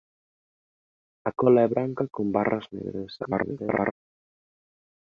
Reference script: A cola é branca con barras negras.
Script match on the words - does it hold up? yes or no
no